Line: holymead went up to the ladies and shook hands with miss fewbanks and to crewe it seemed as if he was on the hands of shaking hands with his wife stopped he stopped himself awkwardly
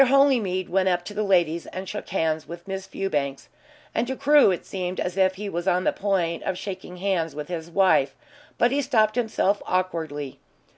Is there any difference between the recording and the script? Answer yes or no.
yes